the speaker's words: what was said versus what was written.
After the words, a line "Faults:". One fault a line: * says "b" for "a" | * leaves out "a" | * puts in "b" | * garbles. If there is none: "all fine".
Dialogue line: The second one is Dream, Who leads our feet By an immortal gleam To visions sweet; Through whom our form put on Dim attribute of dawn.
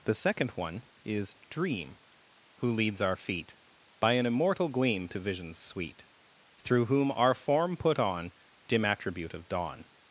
The second one is Dream, Who leads our feet By an immortal gleam To visions sweet; Through whom our form put on Dim attribute of dawn.
Faults:
all fine